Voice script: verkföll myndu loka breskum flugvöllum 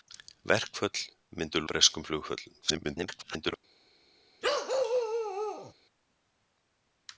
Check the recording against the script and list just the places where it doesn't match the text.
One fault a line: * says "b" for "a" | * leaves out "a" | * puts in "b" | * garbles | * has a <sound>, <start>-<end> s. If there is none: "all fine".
* leaves out "loka"
* garbles
* has a bark, 4.4-5.7 s